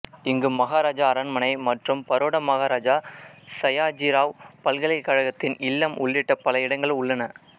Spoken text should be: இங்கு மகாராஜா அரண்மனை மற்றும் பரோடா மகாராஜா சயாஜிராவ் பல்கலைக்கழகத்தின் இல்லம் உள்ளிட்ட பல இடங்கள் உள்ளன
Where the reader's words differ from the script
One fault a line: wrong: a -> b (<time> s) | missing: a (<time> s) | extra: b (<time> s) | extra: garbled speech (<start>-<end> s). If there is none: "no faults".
no faults